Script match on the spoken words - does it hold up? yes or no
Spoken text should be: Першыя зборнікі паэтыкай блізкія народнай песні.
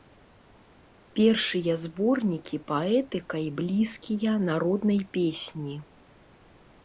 yes